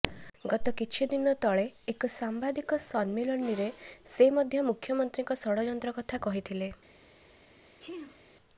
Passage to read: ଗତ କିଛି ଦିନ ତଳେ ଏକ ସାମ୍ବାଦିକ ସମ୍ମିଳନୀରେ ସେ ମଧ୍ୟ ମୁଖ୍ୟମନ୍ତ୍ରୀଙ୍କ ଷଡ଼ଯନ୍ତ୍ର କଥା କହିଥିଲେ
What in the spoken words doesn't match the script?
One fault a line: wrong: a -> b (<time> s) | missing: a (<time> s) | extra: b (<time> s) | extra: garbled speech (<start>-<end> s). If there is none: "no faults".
no faults